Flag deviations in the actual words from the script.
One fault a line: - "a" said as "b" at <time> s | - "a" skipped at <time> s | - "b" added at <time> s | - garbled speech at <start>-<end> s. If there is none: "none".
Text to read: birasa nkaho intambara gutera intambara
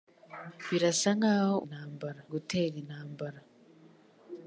none